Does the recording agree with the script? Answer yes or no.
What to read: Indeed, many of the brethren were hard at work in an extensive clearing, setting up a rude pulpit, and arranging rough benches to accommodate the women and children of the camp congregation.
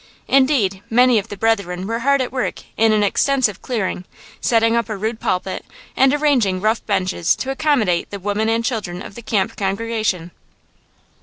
yes